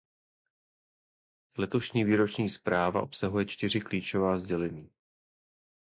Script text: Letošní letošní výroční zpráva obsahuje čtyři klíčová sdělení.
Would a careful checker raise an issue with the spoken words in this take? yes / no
yes